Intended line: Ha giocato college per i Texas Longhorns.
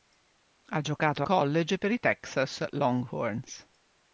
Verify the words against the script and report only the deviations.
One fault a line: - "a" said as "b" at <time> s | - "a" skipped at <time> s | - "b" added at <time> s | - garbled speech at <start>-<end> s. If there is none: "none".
none